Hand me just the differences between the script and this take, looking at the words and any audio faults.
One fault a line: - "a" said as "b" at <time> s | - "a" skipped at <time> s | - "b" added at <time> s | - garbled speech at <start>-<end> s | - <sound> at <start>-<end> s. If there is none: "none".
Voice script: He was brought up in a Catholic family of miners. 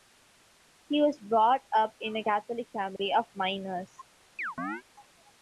- dropout at 3.0-3.0 s
- chirp at 4.4-4.8 s